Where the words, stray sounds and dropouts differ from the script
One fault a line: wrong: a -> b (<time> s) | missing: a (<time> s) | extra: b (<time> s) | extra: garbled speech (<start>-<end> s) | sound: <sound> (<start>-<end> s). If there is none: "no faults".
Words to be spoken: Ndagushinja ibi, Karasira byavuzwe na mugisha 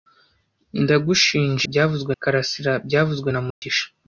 wrong: ibi -> byavuzwe (1.7 s)
sound: dropout (3.5-3.6 s)